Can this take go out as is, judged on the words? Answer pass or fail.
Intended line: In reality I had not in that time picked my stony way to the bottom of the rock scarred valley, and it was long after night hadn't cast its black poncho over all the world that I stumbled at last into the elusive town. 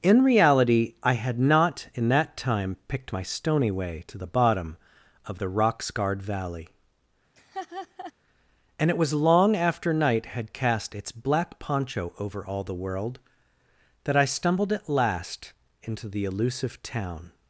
fail